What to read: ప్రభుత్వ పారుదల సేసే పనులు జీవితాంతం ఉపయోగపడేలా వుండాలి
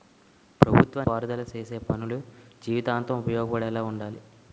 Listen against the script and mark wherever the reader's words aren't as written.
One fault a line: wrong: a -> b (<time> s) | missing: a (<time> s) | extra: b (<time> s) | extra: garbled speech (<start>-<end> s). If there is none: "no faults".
no faults